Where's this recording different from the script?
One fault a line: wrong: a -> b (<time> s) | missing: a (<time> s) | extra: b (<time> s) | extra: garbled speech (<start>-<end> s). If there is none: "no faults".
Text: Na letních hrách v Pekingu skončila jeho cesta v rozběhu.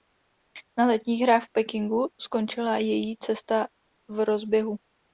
wrong: jeho -> její (2.8 s)